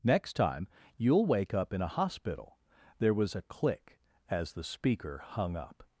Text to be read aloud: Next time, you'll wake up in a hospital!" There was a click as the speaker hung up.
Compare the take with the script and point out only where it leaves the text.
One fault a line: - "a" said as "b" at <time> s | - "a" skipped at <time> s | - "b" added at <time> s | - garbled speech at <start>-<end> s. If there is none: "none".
none